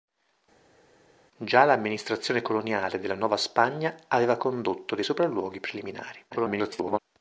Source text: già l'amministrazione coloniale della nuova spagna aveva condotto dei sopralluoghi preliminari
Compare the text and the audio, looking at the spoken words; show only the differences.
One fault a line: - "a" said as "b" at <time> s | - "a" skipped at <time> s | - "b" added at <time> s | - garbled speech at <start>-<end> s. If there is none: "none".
- garbled speech at 6.3-7.0 s